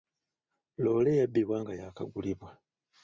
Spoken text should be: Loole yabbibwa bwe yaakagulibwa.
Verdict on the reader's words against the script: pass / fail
fail